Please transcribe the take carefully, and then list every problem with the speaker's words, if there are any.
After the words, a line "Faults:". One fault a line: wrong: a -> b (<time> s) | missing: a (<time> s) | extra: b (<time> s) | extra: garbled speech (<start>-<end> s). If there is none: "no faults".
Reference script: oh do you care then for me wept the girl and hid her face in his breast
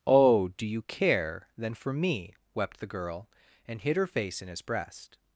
oh do you care then for me wept the girl and hid her face in his breast
Faults:
no faults